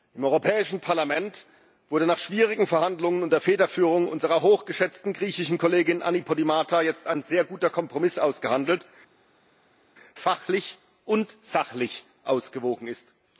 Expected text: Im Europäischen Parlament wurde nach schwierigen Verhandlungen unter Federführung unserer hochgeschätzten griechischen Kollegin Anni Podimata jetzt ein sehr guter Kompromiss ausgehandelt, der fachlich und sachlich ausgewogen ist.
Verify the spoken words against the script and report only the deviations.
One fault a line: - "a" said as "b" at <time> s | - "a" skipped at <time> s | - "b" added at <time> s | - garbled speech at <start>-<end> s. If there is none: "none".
- "der" skipped at 8.8 s